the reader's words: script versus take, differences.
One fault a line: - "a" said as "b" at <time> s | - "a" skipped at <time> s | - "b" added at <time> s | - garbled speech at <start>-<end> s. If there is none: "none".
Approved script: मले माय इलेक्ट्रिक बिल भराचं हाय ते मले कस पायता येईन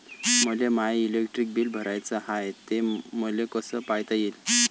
none